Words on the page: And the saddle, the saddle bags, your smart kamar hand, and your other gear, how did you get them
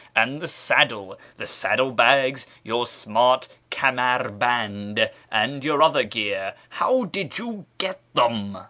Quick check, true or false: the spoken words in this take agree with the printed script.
true